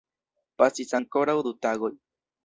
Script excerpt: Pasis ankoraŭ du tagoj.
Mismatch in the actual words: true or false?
false